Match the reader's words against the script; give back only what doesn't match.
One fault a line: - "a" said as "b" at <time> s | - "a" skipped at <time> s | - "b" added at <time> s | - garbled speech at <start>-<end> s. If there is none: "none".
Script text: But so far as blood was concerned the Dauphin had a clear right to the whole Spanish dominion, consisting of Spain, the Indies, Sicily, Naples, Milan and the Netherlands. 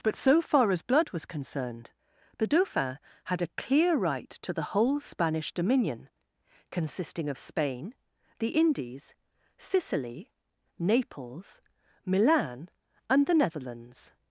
none